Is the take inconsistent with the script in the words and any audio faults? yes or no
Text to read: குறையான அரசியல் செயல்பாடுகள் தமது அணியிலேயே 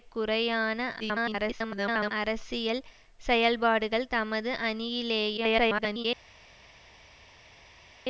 yes